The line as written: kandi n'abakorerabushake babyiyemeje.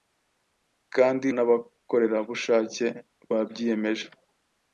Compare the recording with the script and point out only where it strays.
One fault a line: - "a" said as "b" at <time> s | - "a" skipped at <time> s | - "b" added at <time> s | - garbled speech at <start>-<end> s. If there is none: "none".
none